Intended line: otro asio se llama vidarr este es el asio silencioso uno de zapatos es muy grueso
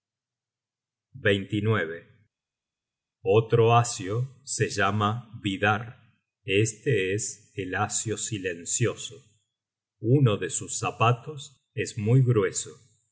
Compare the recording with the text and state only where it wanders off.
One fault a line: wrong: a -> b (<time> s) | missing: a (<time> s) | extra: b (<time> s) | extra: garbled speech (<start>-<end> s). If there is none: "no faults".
extra: sus (10.5 s)